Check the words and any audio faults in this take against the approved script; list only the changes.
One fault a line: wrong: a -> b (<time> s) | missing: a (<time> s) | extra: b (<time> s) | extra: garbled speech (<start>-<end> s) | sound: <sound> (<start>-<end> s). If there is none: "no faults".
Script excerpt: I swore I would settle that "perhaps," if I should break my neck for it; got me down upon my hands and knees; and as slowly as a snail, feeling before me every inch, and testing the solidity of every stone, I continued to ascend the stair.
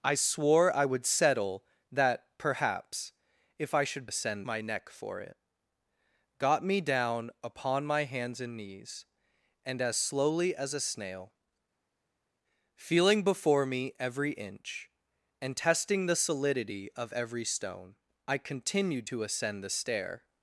wrong: break -> ascend (4.0 s)